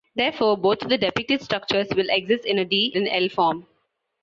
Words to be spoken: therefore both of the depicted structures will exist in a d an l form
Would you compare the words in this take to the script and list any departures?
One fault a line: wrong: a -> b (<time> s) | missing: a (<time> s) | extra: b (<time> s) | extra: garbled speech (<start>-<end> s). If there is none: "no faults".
no faults